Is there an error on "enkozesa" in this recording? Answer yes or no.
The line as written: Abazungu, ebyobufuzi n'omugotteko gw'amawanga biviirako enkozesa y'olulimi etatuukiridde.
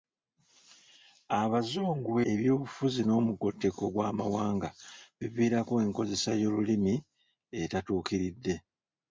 no